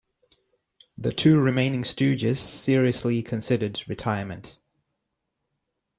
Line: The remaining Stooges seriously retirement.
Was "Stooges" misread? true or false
false